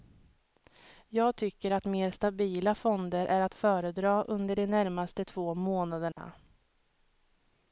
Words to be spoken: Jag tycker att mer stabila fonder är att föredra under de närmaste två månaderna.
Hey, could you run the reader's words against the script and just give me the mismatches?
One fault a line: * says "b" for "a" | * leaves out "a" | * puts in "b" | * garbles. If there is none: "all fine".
all fine